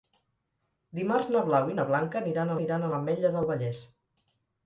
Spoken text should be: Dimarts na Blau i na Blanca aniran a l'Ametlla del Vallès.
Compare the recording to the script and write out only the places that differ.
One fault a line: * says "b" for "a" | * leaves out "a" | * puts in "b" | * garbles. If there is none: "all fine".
* puts in "aniran"